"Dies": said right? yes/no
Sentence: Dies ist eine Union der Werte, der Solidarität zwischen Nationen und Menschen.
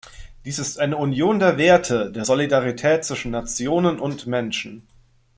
yes